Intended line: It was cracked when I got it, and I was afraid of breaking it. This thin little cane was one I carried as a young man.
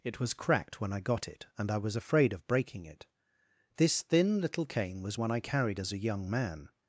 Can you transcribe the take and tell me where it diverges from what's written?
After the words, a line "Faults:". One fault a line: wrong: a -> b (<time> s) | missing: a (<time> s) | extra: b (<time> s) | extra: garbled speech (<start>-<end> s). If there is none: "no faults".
It was cracked when I got it, and I was afraid of breaking it. This thin little cane was one I carried as a young man.
Faults:
no faults